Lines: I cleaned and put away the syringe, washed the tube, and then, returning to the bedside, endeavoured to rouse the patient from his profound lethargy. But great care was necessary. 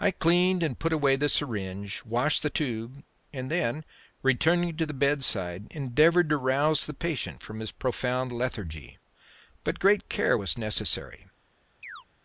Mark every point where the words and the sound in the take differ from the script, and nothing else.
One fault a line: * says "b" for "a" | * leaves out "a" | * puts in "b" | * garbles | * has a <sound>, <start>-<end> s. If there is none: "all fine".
* has a chirp, 11.8-12.0 s